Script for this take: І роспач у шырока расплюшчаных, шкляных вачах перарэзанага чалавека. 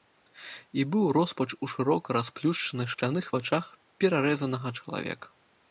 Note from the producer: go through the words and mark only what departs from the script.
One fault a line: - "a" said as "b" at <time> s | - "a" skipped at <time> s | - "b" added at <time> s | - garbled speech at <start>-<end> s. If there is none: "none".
- "быў" added at 0.9 s